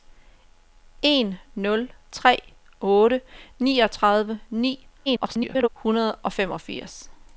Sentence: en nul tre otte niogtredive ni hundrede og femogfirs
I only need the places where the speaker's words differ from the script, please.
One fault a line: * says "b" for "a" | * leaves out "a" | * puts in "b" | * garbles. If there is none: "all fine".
* garbles